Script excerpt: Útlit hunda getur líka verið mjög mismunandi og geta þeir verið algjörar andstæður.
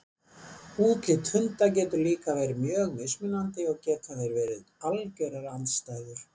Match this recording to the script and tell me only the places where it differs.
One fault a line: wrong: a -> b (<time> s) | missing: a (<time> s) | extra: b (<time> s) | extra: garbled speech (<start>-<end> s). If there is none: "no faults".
no faults